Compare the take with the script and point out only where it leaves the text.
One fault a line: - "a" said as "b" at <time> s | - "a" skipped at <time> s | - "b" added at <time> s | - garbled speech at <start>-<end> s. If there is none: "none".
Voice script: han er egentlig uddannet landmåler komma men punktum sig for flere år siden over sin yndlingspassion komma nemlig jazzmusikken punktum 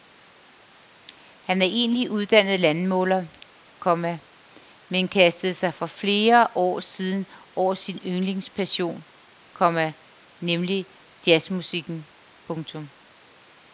- "punktum" said as "kastede" at 5.1 s